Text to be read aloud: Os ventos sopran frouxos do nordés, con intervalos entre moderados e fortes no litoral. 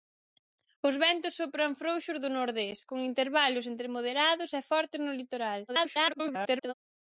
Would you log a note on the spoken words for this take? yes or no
yes